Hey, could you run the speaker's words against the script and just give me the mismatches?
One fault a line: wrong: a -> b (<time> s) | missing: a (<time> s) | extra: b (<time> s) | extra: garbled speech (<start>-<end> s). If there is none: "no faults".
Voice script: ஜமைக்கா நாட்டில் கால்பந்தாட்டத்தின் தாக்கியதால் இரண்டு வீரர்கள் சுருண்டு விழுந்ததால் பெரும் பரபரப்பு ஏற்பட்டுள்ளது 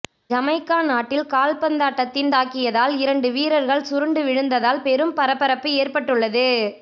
no faults